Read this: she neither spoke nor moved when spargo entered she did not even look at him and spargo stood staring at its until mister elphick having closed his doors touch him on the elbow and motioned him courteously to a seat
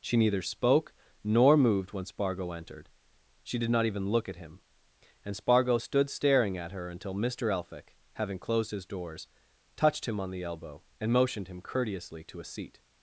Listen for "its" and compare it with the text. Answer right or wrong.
wrong